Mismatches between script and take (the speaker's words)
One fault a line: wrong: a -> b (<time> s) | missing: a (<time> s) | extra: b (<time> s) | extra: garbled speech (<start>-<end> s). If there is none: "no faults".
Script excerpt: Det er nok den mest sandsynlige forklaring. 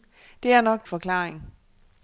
missing: den mest sandsynlige (0.9 s)